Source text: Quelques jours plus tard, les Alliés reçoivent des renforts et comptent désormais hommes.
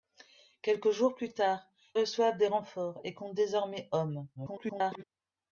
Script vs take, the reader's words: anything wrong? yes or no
yes